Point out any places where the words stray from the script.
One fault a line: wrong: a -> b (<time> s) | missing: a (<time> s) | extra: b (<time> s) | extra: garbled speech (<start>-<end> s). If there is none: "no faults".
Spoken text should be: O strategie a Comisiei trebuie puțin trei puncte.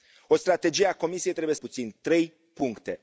no faults